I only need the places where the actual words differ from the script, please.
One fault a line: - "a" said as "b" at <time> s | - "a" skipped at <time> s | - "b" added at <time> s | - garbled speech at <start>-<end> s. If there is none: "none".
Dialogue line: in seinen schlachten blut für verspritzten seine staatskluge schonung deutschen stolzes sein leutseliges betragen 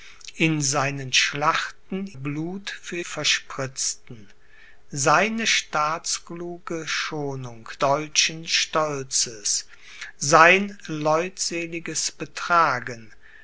none